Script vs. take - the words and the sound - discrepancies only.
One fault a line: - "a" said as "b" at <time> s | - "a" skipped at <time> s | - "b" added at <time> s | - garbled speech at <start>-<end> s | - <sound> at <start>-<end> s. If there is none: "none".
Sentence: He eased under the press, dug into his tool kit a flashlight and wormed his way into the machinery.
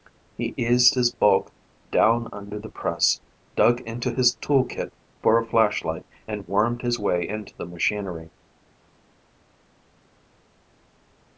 - "his bulk down" added at 0.9 s
- "for" added at 5.2 s